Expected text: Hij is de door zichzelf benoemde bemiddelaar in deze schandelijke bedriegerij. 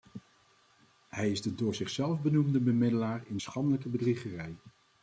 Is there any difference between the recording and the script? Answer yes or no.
yes